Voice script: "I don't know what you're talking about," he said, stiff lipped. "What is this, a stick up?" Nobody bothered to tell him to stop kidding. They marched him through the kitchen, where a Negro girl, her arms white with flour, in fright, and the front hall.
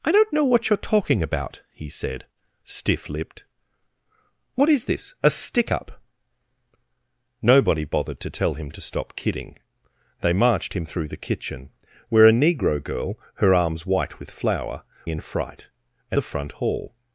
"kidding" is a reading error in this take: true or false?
false